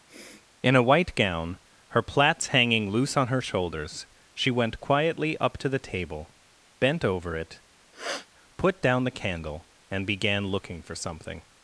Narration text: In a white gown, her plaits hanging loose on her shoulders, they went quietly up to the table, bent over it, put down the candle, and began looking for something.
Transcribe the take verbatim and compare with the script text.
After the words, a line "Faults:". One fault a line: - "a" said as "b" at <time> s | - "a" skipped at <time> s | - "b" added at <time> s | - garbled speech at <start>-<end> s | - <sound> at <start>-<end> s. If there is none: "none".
In a white gown, her plaits hanging loose on her shoulders, she went quietly up to the table, bent over it, put down the candle, and began looking for something.
Faults:
- sniff at 0.1-0.5 s
- "they" said as "she" at 4.3 s
- sniff at 7.9-8.3 s